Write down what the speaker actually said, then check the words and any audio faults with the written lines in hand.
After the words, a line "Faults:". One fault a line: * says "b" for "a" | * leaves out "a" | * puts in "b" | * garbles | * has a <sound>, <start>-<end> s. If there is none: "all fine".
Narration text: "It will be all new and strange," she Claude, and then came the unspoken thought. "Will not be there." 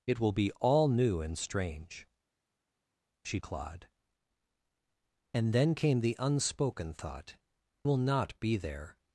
"It will be all new and strange," she Claude, and then came the unspoken thought. "Will not be there."
Faults:
all fine